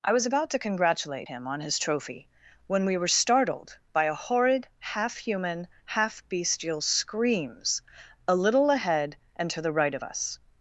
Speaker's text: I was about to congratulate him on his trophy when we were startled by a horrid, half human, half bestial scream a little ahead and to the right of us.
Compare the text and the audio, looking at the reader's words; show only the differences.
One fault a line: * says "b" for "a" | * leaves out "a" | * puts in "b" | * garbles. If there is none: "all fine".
* says "screams" for "scream"